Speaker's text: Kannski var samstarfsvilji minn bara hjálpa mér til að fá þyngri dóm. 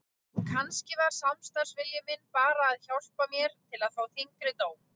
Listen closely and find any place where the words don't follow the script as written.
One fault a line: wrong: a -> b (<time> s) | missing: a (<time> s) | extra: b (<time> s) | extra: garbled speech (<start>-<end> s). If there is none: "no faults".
extra: að (2.7 s)